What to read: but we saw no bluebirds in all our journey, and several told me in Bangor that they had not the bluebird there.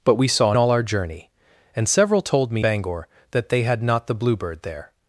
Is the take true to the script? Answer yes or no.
no